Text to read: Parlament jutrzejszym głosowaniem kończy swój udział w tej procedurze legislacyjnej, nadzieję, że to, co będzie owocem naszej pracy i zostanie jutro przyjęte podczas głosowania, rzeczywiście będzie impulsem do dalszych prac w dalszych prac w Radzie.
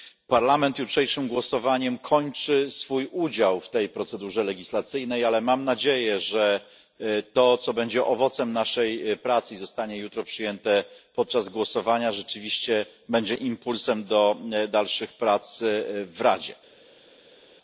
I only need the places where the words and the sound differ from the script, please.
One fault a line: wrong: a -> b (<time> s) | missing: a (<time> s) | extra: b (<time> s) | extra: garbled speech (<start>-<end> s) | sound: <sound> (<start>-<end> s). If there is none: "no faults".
extra: ale mam (5.2 s)
missing: dalszych prac w (16.2 s)